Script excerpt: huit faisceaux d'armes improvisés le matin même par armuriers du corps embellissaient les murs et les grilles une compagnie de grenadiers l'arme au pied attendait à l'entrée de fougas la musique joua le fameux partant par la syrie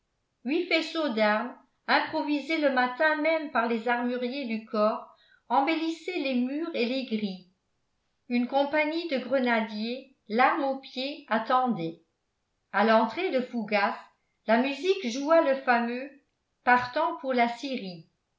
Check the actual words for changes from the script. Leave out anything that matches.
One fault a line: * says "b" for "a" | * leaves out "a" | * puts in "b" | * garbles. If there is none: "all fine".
* puts in "les"
* says "pour" for "par"